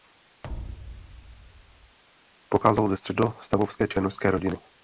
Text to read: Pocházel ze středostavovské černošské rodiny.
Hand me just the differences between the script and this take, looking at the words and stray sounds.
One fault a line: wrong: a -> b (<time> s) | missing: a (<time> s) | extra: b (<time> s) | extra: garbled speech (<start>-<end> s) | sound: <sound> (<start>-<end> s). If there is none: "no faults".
sound: thud (0.4-2.0 s)